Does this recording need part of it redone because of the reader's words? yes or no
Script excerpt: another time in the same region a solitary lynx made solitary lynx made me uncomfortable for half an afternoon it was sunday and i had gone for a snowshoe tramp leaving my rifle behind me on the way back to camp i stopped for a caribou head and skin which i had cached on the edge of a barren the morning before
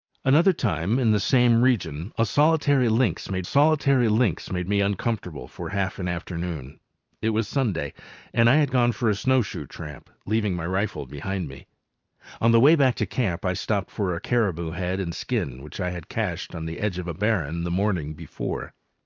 no